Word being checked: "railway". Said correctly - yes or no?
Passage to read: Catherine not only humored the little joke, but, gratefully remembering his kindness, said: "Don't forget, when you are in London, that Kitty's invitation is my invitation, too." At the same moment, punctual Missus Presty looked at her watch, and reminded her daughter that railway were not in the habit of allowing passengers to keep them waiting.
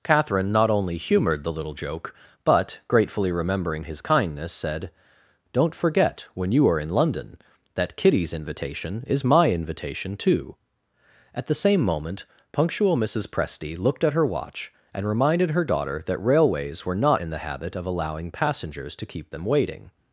no